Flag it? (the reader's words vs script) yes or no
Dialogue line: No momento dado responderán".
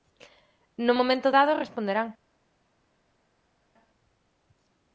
no